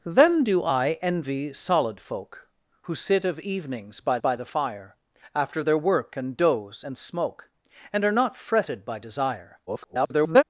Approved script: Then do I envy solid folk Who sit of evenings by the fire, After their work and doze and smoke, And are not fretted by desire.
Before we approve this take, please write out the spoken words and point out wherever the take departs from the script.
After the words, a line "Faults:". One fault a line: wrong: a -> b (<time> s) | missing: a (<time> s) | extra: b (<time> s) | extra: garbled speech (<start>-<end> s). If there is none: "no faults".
Then do I envy solid folk Who sit of evenings by by the fire, After their work and doze and smoke, And are not fretted by desire. [garbled]
Faults:
extra: by (4.2 s)
extra: garbled speech (9.7-10.4 s)